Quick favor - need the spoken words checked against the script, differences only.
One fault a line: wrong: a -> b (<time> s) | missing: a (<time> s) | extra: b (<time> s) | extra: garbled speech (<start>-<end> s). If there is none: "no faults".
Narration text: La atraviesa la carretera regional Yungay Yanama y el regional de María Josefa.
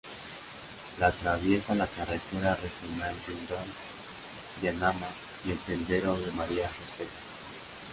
wrong: regional -> sendero (5.6 s)